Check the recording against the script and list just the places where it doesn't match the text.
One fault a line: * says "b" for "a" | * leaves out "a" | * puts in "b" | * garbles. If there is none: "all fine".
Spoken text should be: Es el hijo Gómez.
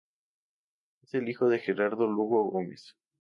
* puts in "de Gerardo Lugo"